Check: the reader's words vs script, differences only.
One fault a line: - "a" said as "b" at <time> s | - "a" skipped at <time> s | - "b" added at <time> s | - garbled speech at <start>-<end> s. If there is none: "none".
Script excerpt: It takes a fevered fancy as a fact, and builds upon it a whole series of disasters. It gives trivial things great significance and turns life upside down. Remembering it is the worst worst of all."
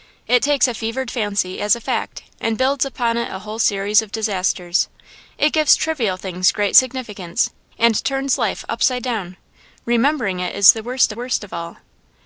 none